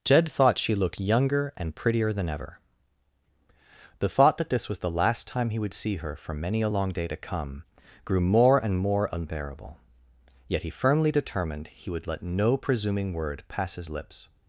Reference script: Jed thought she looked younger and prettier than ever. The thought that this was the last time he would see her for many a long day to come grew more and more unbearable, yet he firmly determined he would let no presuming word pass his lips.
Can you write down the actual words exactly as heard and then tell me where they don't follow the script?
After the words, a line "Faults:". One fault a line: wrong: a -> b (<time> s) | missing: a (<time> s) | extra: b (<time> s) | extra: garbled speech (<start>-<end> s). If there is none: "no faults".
Jed thought she looked younger and prettier than ever. The thought that this was the last time he would see her for many a long day to come grew more and more unbearable, yet he firmly determined he would let no presuming word pass his lips.
Faults:
no faults